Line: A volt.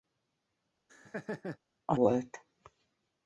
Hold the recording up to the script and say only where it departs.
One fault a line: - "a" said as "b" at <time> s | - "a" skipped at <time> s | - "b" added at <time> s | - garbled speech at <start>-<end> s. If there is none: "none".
none